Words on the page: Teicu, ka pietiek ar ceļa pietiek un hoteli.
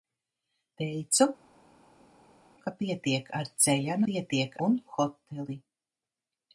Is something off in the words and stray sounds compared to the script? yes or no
no